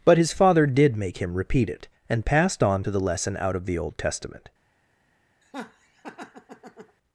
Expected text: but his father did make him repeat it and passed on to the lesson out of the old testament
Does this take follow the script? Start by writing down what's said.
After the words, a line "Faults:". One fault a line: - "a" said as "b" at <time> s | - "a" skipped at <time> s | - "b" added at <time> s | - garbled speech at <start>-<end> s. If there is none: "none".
but his father did make him repeat it and passed on to the lesson out of the old testament
Faults:
none